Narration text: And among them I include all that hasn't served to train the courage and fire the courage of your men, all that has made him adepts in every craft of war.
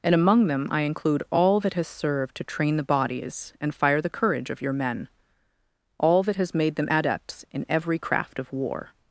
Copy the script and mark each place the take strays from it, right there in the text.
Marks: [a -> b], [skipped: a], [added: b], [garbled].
And among them I include all that [hasn't -> has] served to train the [courage -> bodies] and fire the courage of your men, all that has made [him -> them] adepts in every craft of war.